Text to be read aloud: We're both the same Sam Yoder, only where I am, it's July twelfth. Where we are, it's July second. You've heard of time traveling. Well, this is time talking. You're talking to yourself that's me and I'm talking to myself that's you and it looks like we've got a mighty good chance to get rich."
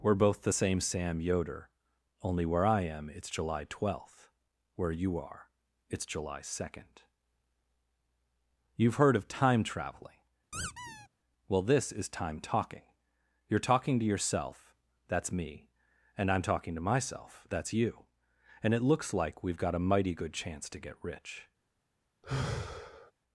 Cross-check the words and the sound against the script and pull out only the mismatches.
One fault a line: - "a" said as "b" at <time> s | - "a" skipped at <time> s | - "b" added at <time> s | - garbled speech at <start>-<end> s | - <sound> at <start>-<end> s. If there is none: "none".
- "we" said as "you" at 4.9 s
- squeak at 10.5-11.1 s
- sigh at 22.2-23.1 s